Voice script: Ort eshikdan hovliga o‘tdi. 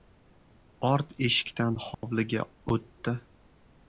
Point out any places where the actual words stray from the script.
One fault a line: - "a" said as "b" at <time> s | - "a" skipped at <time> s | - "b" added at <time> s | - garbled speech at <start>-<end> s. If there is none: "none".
none